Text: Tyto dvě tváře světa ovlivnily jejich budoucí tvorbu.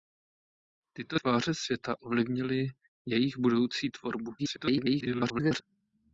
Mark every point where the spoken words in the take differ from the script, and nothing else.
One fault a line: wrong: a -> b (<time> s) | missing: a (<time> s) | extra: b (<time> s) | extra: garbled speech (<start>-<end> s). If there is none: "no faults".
missing: dvě (1.2 s)
extra: garbled speech (4.4-5.6 s)